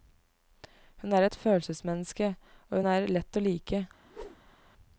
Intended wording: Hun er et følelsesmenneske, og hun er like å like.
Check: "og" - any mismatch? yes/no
no